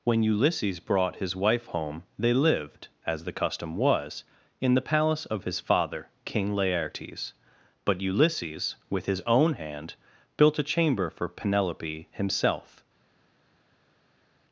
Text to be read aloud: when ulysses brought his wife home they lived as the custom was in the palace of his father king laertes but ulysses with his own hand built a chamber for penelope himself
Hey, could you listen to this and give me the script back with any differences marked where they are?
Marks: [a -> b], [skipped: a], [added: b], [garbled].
when ulysses brought his wife home they lived as the custom was in the palace of his father king laertes but ulysses with his own hand built a chamber for penelope himself